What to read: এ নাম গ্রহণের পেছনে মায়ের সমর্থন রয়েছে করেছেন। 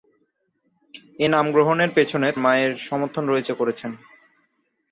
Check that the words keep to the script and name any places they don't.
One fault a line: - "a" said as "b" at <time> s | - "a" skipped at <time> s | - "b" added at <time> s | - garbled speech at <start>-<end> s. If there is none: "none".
none